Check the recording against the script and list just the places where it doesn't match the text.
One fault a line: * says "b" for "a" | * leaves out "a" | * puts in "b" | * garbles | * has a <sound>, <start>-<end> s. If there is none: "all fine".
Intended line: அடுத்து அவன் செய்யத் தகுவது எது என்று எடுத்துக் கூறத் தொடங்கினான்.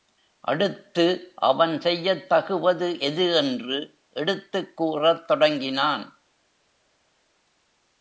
all fine